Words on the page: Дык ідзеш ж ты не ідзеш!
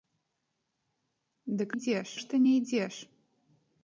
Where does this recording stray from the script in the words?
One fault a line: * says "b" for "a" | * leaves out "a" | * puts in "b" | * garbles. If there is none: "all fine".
all fine